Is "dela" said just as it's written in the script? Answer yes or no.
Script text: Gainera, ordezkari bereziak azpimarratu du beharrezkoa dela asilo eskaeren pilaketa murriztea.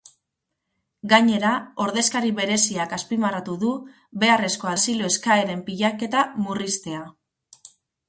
no